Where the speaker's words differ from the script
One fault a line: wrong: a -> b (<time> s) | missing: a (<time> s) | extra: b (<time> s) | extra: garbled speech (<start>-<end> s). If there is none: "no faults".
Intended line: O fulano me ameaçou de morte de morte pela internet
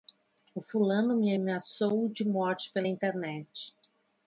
missing: de morte (2.7 s)